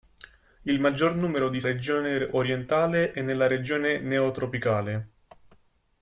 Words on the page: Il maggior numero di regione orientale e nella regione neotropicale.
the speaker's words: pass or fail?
pass